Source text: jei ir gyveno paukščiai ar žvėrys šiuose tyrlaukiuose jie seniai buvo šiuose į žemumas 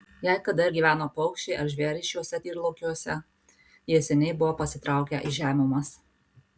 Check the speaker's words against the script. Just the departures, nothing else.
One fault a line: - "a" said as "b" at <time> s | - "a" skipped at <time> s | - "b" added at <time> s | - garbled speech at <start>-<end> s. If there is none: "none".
- "kada" added at 0.5 s
- "šiuose" said as "pasitraukę" at 4.6 s